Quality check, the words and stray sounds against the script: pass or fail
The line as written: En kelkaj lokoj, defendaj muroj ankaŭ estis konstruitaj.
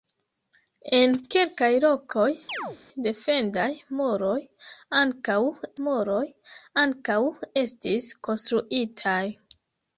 fail